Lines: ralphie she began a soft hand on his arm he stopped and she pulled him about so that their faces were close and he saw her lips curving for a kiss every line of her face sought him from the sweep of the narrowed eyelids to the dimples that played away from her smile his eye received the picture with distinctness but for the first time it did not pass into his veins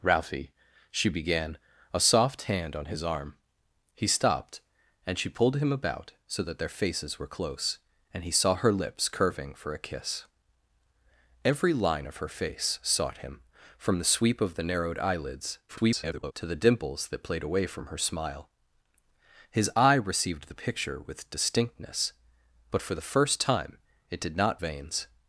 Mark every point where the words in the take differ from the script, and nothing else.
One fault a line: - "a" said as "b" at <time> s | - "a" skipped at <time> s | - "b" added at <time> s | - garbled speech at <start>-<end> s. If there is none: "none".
- garbled speech at 15.7-16.3 s
- "pass into his" skipped at 24.6 s